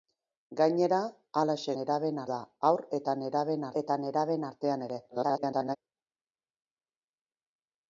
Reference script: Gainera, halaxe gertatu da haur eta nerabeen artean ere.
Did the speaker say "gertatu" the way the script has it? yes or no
no